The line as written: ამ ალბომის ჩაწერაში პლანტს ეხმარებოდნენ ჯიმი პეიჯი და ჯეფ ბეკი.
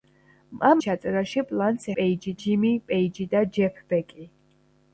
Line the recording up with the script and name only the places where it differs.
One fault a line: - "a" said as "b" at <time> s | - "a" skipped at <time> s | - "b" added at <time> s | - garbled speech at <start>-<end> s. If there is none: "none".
- "ალბომის" skipped at 0.8 s
- "ეხმარებოდნენ" said as "პეიჯი" at 2.0 s